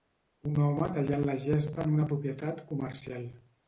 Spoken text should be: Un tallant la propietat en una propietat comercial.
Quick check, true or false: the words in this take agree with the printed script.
false